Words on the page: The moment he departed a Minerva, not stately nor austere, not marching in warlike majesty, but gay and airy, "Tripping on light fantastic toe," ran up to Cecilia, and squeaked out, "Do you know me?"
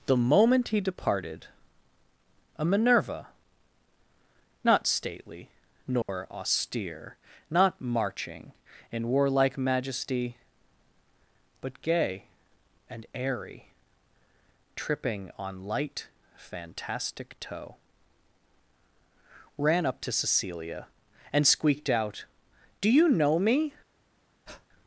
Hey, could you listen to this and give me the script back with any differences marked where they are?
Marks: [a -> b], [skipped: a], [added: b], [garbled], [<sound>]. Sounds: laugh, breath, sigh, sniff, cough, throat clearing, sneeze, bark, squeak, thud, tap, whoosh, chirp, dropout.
The moment he departed a Minerva, not stately nor [dropout] austere, not marching in warlike majesty, but gay and airy, "Tripping on light fantastic toe," ran up to Cecilia, and squeaked out, "Do you know me?" [breath]